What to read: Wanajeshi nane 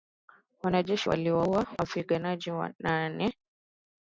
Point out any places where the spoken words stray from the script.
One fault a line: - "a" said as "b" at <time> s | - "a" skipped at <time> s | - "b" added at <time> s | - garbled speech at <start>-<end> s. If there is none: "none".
- "waliwaua wapiganaji" added at 1.1 s